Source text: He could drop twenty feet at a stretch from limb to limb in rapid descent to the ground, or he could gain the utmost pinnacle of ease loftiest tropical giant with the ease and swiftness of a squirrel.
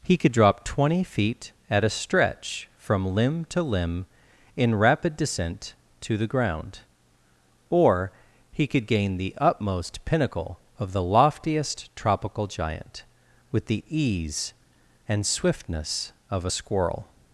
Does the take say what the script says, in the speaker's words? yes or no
no